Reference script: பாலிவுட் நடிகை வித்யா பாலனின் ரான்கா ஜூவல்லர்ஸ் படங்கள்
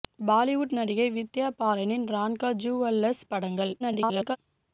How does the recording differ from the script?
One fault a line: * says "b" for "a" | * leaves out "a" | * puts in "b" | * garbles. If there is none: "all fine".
* garbles